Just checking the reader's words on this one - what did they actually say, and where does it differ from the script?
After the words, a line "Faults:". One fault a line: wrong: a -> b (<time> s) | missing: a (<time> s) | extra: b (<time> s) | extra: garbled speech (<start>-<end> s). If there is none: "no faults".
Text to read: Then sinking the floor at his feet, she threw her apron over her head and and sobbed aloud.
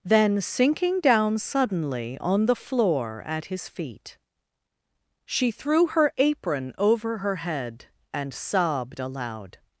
Then sinking down suddenly on the floor at his feet, she threw her apron over her head and sobbed aloud.
Faults:
extra: down suddenly on (1.0 s)
missing: and (8.3 s)